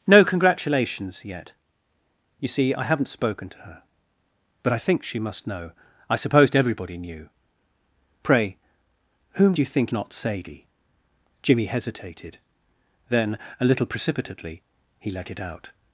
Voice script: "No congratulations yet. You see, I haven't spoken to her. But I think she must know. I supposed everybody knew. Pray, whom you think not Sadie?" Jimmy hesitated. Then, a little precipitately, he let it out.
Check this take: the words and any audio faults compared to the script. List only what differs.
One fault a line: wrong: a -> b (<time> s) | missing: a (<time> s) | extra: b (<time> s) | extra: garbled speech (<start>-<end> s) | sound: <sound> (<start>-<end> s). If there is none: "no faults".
no faults